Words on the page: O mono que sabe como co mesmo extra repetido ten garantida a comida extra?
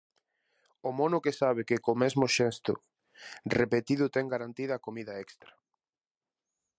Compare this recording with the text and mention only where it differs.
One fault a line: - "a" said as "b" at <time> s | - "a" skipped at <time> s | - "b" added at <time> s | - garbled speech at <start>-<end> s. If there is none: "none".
- "como" said as "que" at 1.7 s
- "extra" said as "xesto" at 2.4 s